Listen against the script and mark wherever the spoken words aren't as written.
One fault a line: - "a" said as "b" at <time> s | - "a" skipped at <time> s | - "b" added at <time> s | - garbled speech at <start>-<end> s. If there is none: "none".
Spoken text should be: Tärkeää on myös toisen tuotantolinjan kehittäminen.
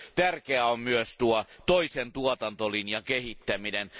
none